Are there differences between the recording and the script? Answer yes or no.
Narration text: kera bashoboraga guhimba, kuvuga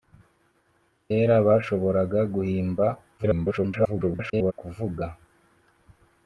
yes